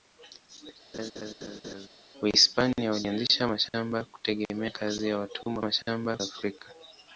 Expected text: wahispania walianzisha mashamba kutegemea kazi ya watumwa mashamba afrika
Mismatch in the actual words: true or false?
false